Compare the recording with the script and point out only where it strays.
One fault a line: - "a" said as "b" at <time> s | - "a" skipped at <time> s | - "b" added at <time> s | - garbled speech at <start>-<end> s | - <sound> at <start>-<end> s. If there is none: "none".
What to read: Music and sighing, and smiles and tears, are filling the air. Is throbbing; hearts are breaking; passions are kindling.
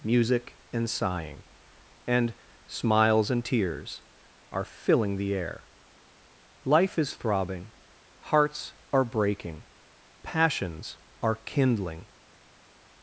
- "Life" added at 6.7 s